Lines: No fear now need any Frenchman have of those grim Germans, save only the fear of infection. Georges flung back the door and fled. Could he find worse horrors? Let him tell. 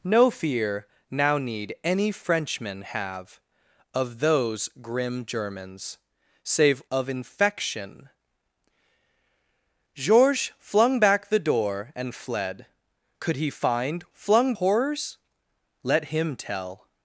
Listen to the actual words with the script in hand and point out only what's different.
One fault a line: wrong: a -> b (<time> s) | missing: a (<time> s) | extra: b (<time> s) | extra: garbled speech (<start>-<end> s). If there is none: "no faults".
missing: only the fear (6.8 s)
wrong: worse -> flung (14.1 s)